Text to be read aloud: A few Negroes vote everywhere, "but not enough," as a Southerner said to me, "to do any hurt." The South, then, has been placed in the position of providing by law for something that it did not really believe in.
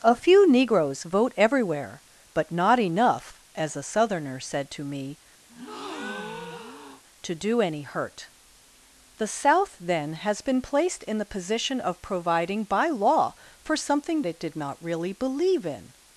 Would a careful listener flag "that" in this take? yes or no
yes